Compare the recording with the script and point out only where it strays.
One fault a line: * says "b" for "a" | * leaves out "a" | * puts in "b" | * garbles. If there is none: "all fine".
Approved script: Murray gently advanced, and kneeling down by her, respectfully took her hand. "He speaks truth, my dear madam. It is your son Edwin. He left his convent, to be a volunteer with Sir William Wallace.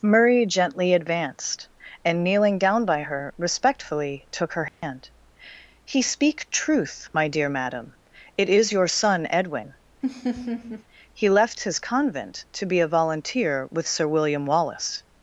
* says "speak" for "speaks"